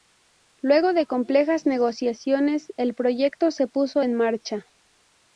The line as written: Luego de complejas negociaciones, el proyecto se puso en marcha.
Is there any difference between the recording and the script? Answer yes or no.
no